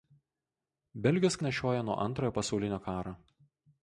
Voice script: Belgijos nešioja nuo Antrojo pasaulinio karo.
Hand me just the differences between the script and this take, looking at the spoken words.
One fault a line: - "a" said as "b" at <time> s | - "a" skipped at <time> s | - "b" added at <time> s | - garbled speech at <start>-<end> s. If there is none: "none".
none